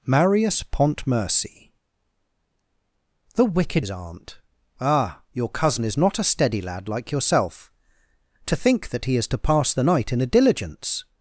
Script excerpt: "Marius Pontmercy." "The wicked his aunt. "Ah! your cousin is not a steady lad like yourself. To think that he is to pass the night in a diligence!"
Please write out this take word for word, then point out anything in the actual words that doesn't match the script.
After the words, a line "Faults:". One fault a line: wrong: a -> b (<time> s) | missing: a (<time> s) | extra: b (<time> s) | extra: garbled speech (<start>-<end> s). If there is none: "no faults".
"Marius Pontmercy." "The wicked his aunt. "Ah! your cousin is not a steady lad like yourself. To think that he is to pass the night in a diligence!"
Faults:
no faults